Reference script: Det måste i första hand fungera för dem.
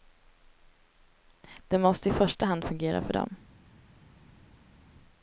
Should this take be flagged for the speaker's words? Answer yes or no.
no